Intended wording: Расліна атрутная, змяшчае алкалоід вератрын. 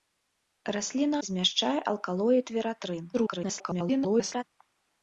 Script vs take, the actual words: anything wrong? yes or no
yes